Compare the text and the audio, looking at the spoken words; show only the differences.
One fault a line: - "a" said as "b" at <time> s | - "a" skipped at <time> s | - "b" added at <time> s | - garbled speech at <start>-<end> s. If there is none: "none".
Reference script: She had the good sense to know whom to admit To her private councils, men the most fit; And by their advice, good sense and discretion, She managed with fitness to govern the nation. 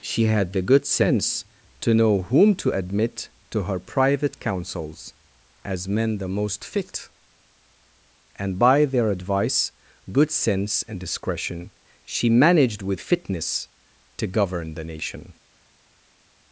- "as" added at 5.6 s